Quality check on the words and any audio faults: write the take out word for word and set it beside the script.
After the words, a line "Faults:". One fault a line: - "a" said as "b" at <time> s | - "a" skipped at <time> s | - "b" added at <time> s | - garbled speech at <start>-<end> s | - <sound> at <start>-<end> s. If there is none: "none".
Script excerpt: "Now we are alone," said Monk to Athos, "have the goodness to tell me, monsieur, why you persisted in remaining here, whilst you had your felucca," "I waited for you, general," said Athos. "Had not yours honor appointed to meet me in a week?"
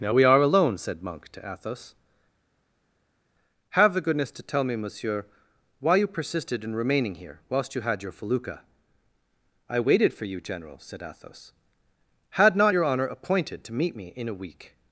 "Now we are alone," said Monk to Athos, "have the goodness to tell me, monsieur, why you persisted in remaining here, whilst you had your felucca," "I waited for you, general," said Athos. "Had not your honor appointed to meet me in a week?"
Faults:
- "yours" said as "your" at 12.7 s